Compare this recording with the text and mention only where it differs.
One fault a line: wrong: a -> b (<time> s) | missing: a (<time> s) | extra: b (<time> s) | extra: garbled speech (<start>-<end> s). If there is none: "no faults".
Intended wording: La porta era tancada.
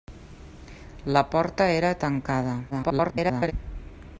extra: garbled speech (2.7-3.5 s)